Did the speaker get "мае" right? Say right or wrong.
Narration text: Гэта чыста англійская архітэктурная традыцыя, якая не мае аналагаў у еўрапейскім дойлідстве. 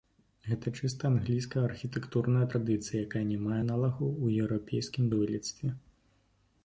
right